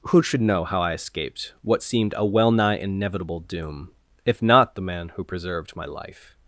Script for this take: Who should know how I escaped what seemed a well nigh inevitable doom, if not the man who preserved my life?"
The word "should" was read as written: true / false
true